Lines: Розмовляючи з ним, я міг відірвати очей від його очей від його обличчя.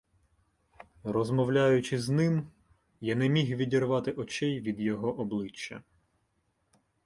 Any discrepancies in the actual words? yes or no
yes